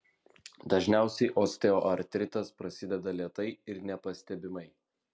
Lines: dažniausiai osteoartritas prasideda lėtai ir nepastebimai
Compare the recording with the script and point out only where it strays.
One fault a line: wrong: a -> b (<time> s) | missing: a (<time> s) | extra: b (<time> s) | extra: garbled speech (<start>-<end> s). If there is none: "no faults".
no faults